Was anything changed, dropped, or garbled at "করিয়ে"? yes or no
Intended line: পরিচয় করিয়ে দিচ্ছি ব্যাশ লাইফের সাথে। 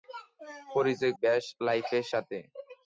yes